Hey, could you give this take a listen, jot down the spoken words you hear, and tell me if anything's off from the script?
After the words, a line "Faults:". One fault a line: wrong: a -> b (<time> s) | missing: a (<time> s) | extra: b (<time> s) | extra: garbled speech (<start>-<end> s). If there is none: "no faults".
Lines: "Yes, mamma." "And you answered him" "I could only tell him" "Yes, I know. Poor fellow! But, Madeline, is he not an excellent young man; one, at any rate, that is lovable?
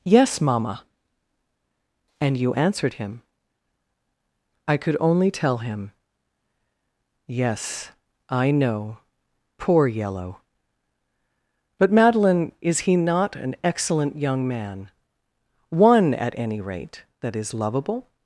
"Yes, mamma." "And you answered him" "I could only tell him" "Yes, I know. Poor yellow! But, Madeline, is he not an excellent young man; one, at any rate, that is lovable?
Faults:
wrong: fellow -> yellow (9.9 s)